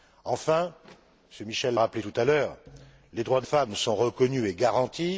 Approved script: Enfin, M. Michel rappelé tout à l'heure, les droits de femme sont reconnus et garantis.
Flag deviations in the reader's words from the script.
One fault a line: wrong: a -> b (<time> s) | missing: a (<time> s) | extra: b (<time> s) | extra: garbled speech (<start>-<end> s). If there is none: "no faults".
no faults